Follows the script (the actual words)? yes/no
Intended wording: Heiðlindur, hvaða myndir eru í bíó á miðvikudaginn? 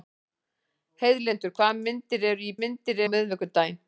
no